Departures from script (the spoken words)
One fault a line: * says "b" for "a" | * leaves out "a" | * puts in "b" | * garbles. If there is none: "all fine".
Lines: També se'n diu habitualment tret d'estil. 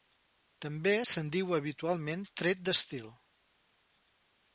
all fine